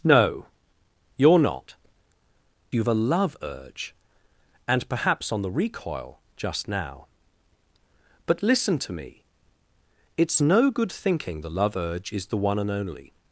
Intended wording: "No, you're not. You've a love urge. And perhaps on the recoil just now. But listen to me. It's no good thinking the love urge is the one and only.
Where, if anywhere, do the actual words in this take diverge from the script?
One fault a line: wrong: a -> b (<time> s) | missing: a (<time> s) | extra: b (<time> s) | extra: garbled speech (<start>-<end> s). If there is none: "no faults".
no faults